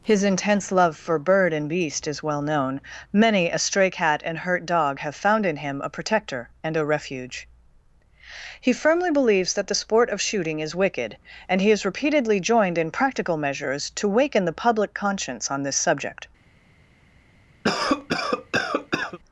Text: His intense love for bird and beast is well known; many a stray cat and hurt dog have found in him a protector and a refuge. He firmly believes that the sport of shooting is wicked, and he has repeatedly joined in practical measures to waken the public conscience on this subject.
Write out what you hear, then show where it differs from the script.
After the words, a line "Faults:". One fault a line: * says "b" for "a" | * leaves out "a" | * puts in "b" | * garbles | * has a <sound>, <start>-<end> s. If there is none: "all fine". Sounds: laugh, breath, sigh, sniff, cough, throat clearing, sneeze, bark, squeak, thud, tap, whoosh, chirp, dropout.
His intense love for bird and beast is well known; many a stray cat and hurt dog have found in him a protector and a refuge. He firmly believes that the sport of shooting is wicked, and he has repeatedly joined in practical measures to waken the public conscience on this subject.
Faults:
* has a cough, 17.6-19.2 s